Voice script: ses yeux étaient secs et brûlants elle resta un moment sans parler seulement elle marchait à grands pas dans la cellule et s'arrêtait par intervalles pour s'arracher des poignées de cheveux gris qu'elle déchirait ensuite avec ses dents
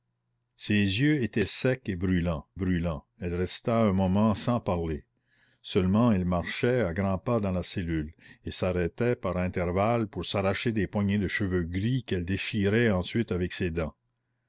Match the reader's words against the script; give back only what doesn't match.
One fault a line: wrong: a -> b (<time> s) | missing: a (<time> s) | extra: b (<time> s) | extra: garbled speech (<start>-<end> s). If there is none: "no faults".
extra: brûlants (2.5 s)